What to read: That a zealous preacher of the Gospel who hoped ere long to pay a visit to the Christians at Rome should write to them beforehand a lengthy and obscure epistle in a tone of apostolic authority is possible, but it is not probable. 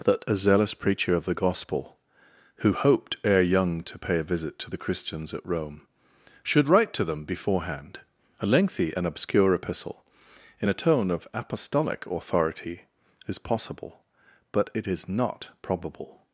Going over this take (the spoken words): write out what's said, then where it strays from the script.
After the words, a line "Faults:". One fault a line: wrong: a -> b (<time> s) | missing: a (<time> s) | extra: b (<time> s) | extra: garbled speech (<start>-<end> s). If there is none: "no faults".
That a zealous preacher of the Gospel who hoped ere young to pay a visit to the Christians at Rome should write to them beforehand a lengthy and obscure epistle in a tone of apostolic authority is possible, but it is not probable.
Faults:
wrong: long -> young (3.4 s)